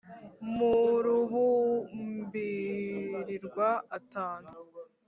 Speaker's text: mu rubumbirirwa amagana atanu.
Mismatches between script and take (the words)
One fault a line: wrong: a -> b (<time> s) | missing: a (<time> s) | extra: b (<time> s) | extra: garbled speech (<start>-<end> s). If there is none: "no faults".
missing: amagana (3.7 s)